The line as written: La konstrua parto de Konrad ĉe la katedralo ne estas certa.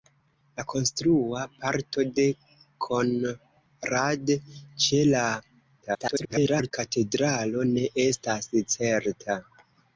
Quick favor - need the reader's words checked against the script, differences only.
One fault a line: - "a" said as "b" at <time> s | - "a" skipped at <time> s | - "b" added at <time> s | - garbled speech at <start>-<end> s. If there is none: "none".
- garbled speech at 5.8-6.7 s